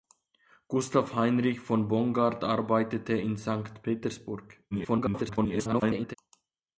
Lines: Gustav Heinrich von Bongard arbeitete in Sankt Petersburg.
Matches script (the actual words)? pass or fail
fail